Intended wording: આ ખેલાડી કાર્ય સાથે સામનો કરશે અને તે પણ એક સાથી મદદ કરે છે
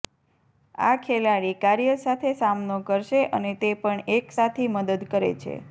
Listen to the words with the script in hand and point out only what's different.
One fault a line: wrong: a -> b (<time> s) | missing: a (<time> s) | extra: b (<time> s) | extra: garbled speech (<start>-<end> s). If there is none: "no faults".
no faults